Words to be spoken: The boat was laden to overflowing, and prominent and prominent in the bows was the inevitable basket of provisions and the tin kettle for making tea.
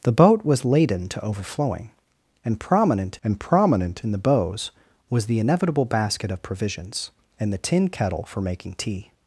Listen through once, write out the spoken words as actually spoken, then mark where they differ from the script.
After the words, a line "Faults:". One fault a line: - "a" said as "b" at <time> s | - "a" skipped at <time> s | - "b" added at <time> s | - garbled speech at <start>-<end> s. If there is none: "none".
The boat was laden to overflowing, and prominent and prominent in the bows was the inevitable basket of provisions and the tin kettle for making tea.
Faults:
none